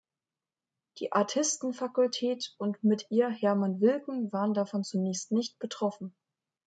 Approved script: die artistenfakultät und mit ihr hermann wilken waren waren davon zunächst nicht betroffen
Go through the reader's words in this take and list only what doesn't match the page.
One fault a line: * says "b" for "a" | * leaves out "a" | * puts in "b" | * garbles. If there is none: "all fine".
* leaves out "waren"